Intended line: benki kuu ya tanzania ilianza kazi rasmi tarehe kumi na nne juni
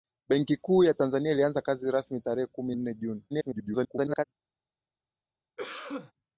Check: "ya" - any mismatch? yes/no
no